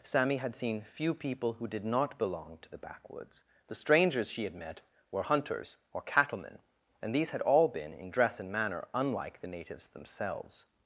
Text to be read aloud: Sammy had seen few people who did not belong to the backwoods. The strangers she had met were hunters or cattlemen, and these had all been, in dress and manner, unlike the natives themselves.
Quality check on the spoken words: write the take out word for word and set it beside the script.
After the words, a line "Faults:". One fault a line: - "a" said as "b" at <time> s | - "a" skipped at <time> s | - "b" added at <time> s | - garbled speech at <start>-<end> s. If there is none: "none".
Sammy had seen few people who did not belong to the backwoods. The strangers she had met were hunters or cattlemen, and these had all been, in dress and manner, unlike the natives themselves.
Faults:
none